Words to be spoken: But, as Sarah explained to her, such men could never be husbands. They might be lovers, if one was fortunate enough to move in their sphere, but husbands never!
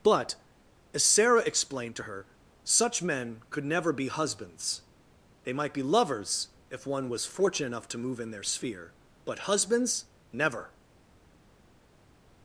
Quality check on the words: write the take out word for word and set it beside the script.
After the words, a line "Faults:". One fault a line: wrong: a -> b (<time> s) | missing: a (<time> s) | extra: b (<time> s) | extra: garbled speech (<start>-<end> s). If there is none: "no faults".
But, as Sarah explained to her, such men could never be husbands. They might be lovers, if one was fortunate enough to move in their sphere, but husbands never!
Faults:
no faults